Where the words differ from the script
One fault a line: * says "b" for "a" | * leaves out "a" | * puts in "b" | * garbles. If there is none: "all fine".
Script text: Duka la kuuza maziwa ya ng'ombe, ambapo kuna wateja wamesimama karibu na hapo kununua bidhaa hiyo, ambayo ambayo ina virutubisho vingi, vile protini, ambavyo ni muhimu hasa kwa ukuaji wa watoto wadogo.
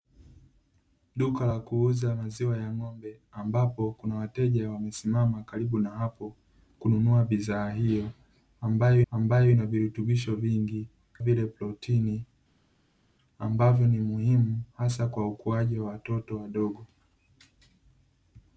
all fine